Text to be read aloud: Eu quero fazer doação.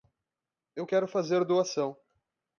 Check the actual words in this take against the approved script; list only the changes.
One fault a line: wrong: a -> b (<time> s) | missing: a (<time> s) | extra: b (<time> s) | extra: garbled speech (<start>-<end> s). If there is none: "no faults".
no faults